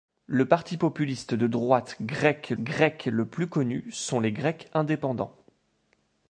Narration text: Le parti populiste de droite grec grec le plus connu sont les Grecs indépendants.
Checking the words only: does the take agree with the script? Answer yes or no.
yes